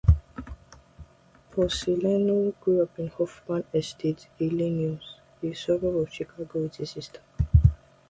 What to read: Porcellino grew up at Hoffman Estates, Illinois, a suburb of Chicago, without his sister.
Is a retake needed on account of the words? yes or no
yes